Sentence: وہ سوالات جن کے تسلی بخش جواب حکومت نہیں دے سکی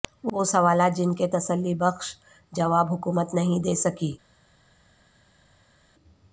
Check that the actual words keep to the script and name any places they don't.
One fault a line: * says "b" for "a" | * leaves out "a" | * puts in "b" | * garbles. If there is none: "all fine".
all fine